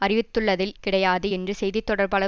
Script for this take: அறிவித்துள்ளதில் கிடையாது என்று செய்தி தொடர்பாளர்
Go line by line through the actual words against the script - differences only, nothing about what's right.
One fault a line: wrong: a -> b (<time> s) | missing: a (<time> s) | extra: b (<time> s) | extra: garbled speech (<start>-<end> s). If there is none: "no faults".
no faults